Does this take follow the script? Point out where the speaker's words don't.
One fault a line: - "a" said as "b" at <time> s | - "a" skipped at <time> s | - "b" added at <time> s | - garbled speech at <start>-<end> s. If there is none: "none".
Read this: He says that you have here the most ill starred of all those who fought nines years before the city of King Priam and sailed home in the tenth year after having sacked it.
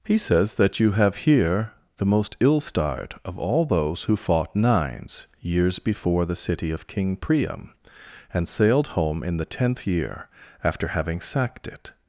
none